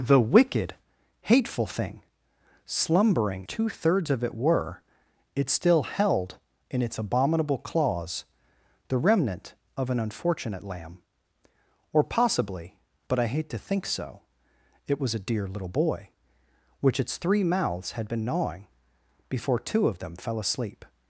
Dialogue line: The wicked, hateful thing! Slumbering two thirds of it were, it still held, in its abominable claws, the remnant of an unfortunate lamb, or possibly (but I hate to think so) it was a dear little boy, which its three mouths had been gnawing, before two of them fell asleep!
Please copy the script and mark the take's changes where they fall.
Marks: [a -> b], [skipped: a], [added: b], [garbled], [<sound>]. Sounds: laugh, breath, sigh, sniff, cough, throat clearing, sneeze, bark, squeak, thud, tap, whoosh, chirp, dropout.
The wicked, hateful thing! Slumbering two thirds of it were, it still held, in its abominable claws, the remnant of an unfortunate lamb, or possibly (but I hate to think so) it was a dear little boy, which its three mouths had been gnawing, before two of them fell asleep!